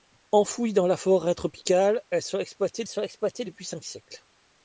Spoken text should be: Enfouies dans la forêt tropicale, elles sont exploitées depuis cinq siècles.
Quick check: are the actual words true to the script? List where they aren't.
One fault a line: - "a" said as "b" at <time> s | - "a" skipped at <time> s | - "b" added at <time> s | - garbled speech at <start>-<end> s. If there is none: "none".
- "sont exploitées" added at 2.9 s